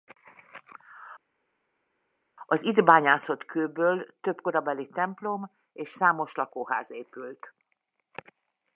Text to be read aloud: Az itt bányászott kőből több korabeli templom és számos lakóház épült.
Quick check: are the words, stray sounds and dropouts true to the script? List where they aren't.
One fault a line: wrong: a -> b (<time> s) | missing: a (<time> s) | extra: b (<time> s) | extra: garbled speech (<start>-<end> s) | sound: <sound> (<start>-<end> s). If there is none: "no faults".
no faults